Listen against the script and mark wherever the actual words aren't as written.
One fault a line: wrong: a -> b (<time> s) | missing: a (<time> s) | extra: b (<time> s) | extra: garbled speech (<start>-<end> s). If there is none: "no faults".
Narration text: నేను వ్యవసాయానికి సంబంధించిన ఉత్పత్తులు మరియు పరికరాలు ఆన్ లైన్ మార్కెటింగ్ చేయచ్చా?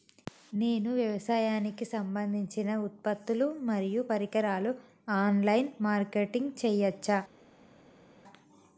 no faults